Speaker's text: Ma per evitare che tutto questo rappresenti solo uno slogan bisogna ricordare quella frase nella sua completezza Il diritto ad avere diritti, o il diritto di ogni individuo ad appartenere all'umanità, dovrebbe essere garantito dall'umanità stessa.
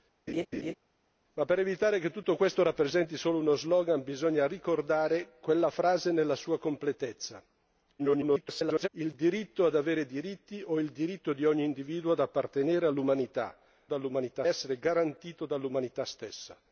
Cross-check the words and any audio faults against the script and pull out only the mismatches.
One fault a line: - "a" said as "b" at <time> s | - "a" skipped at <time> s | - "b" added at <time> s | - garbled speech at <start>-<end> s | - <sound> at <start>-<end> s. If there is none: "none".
- laugh at 0.3-0.7 s
- garbled speech at 8.0-8.9 s
- "dovrebbe" said as "dall'umanità" at 13.8 s